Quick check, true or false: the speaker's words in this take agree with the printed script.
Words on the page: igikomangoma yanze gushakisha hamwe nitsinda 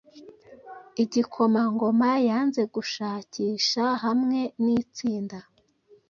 true